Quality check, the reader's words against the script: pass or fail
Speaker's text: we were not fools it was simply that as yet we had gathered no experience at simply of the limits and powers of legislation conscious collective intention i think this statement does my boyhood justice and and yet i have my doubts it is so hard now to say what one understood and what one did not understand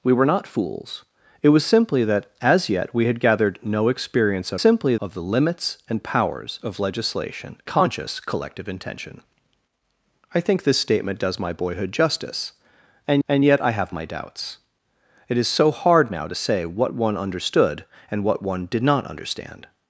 pass